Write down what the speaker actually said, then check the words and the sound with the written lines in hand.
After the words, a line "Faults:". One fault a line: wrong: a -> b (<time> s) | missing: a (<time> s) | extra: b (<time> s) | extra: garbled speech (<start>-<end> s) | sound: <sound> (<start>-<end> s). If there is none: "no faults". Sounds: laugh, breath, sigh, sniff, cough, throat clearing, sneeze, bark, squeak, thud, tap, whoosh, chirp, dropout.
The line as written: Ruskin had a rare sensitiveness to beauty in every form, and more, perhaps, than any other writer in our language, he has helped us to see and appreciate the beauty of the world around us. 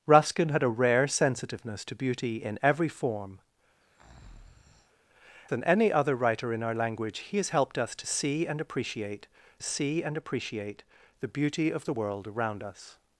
Ruskin had a rare sensitiveness to beauty in every form, than any other writer in our language, he has helped us to see and appreciate see and appreciate the beauty of the world around us.
Faults:
missing: and more perhaps (3.4 s)
sound: breath (3.8-5.1 s)
extra: see and appreciate (9.6 s)